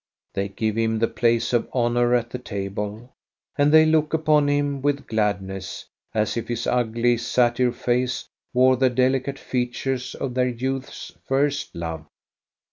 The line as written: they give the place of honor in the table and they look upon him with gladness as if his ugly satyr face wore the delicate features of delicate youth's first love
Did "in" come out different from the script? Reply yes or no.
yes